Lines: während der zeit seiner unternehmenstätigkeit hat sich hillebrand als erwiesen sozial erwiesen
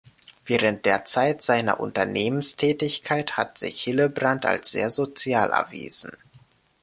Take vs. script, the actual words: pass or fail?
fail